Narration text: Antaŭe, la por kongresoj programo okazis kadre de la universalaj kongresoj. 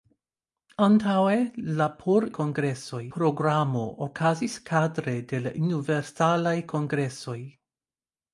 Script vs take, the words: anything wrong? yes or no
no